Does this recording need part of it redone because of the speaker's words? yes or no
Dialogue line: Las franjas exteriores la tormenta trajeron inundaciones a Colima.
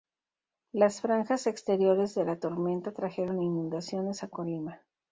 yes